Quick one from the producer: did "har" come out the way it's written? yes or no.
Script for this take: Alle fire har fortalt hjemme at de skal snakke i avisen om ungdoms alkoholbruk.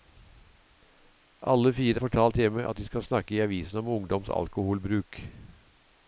no